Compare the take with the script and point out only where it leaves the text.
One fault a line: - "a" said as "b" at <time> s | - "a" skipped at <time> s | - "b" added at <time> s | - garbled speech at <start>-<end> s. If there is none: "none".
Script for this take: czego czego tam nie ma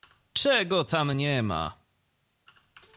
- "czego" skipped at 0.8 s